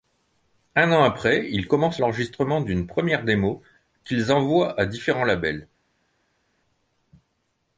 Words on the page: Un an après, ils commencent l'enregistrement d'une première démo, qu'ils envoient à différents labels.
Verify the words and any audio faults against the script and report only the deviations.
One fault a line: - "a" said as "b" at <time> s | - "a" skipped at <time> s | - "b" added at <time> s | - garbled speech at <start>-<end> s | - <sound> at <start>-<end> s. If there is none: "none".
none